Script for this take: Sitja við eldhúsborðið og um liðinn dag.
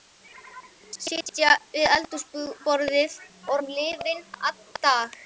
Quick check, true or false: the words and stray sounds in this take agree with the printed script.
false